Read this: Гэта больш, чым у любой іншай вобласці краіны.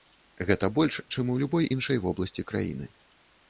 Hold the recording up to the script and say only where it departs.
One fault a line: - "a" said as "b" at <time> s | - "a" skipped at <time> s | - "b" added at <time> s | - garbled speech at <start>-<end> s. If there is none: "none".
none